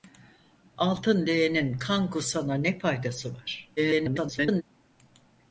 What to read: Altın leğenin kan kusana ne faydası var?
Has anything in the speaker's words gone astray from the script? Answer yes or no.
yes